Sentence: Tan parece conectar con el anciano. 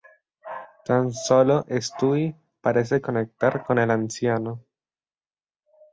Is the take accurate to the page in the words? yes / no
no